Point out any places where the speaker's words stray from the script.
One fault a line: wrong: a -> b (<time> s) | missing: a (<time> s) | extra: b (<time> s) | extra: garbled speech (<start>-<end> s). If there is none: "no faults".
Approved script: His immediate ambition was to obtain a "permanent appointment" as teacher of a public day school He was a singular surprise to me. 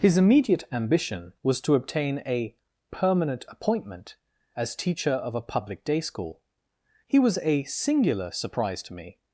no faults